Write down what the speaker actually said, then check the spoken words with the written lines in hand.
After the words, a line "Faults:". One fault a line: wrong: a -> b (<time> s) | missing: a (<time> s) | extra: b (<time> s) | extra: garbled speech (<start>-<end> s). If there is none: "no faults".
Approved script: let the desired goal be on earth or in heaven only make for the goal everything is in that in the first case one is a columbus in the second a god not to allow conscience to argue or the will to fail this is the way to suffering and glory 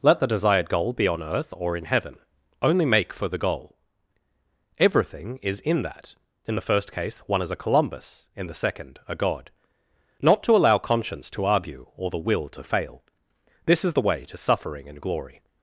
let the desired goal be on earth or in heaven only make for the goal everything is in that in the first case one is a columbus in the second a god not to allow conscience to argue or the will to fail this is the way to suffering and glory
Faults:
no faults